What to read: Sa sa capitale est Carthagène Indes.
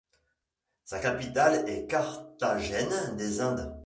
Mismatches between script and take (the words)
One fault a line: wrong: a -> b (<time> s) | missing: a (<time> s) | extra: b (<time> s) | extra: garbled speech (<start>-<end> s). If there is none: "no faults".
missing: sa (1.0 s)
extra: des (3.2 s)